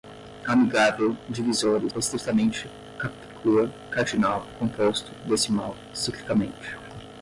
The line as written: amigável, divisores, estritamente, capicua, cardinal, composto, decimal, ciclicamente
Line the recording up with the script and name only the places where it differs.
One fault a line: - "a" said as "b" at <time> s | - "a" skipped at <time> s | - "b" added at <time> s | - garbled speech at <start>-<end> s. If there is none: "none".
none